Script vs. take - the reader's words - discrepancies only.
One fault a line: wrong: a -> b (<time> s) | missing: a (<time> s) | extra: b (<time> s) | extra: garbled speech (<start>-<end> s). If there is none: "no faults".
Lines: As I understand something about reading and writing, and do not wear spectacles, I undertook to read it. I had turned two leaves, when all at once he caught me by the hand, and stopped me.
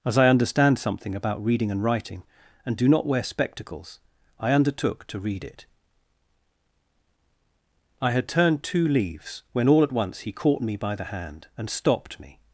no faults